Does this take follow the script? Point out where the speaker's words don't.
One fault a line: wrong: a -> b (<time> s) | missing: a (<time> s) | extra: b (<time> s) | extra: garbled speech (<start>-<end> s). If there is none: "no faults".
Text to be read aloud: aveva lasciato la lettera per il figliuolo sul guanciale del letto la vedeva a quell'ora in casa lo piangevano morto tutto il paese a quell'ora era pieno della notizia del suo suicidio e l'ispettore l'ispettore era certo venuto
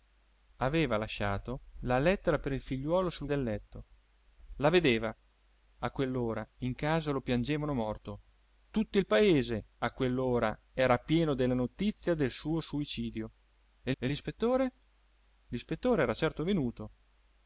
missing: guanciale (3.3 s)
extra: e (14.0 s)